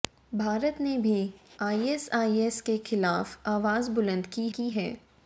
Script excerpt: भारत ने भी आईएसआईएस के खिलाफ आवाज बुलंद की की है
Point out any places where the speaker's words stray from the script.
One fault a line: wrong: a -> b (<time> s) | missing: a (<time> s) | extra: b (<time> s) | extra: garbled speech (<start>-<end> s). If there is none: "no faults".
no faults